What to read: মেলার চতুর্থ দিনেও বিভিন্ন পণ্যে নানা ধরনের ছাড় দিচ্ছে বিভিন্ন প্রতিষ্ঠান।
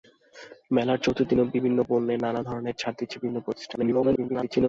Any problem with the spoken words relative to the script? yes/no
yes